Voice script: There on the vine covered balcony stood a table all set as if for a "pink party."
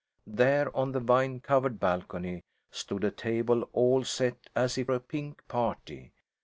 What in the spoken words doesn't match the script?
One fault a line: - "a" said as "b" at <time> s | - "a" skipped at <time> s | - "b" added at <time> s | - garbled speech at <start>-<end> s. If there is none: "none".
- "for" skipped at 4.9 s